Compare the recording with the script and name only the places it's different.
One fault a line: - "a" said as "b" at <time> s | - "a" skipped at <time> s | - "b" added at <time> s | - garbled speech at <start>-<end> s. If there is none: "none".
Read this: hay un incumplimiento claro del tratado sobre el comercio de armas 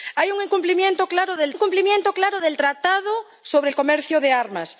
- "incumplimiento claro del" added at 1.5 s